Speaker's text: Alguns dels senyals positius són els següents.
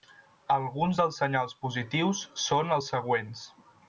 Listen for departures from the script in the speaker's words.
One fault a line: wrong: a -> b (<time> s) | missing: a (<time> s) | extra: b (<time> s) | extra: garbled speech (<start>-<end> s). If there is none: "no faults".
no faults